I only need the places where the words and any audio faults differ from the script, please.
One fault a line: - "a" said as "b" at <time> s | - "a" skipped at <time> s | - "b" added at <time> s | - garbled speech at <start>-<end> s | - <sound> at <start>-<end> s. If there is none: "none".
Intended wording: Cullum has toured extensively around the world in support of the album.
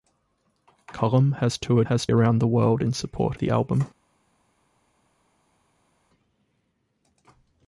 - "extensively" said as "has" at 1.8 s
- "of" skipped at 3.4 s